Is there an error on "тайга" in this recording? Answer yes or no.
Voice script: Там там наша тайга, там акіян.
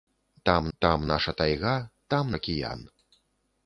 no